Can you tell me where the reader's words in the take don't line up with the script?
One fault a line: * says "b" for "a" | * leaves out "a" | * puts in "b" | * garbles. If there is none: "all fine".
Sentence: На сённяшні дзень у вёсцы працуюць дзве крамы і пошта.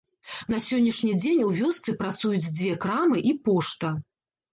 all fine